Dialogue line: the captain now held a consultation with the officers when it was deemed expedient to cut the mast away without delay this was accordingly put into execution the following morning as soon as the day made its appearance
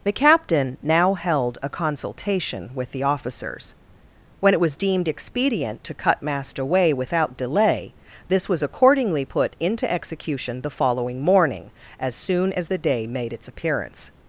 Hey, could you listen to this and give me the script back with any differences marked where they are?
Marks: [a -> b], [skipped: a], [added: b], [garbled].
the captain now held a consultation with the officers when it was deemed expedient to cut [skipped: the] mast away without delay this was accordingly put into execution the following morning as soon as the day made its appearance